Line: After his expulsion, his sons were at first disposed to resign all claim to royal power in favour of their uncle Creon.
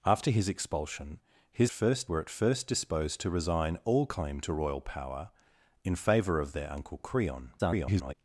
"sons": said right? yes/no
no